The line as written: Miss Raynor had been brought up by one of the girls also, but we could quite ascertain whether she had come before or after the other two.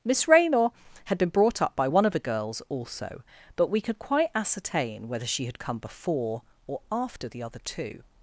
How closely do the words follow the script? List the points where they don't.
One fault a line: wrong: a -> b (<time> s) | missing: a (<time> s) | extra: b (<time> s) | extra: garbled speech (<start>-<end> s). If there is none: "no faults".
no faults